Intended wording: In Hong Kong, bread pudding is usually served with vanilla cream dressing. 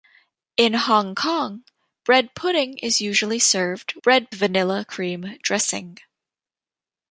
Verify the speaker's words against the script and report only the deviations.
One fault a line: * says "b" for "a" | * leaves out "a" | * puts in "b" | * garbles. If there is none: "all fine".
* says "bread" for "with"